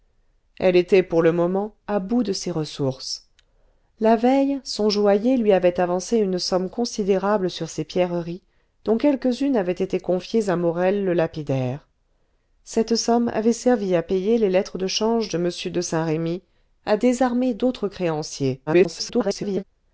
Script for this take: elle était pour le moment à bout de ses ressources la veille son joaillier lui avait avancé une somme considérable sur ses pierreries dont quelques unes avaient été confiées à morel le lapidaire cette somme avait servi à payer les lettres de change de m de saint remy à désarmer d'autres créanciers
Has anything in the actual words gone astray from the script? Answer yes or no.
yes